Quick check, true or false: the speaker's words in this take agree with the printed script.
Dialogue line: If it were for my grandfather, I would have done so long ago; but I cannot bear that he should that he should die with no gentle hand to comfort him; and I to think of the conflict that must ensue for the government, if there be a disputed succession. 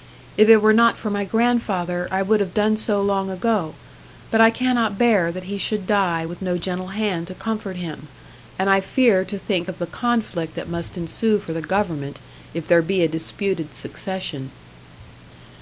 false